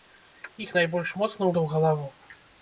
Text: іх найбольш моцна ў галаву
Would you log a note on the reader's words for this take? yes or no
no